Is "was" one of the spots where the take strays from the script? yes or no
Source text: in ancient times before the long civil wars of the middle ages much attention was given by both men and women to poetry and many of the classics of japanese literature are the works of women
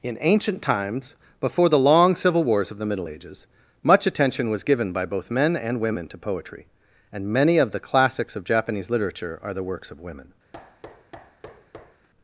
no